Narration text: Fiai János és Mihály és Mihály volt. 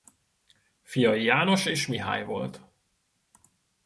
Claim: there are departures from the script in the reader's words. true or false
true